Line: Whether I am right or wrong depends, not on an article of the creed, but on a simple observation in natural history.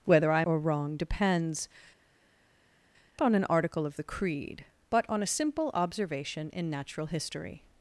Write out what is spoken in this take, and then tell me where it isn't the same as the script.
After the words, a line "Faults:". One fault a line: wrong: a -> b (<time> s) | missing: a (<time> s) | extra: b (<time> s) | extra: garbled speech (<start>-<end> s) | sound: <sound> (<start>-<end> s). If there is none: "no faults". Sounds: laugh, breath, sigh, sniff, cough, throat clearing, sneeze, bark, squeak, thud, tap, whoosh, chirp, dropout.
Whether I or wrong depends, on an article of the creed, but on a simple observation in natural history.
Faults:
missing: am right (0.4 s)
missing: not (1.7 s)